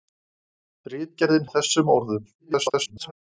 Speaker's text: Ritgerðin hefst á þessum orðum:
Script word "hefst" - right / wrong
wrong